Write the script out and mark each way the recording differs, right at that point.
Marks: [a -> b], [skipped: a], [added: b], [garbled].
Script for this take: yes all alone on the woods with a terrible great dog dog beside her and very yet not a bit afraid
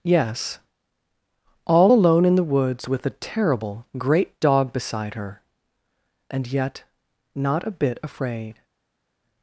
yes all alone [on -> in] the woods with a terrible great dog [skipped: dog] beside her and [skipped: very] yet not a bit afraid